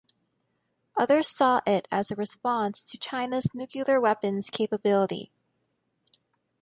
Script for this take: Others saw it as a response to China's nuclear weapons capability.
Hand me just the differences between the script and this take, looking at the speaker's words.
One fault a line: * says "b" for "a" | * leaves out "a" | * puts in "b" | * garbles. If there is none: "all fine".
all fine